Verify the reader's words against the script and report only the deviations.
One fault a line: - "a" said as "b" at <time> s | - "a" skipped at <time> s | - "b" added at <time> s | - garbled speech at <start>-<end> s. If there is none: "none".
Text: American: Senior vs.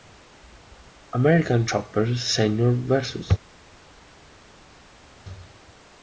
- "Chopper" added at 1.6 s